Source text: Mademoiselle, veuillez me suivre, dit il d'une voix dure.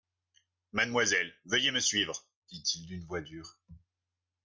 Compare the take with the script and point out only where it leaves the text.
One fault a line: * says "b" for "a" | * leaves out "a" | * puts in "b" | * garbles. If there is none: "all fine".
all fine